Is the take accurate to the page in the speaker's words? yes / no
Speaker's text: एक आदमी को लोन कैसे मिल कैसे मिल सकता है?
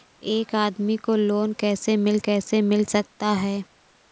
yes